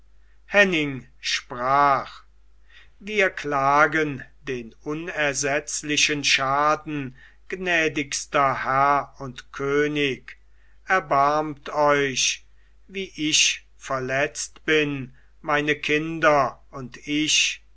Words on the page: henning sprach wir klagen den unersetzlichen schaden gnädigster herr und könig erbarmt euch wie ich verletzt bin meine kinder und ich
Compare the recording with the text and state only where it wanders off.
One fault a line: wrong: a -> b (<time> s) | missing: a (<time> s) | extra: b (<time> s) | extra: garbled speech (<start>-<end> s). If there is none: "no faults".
no faults